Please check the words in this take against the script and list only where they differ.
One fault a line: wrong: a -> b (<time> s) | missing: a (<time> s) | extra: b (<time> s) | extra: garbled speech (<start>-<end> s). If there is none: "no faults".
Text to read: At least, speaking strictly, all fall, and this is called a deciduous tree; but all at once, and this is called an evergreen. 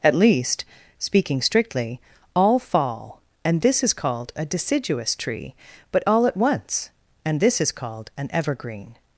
no faults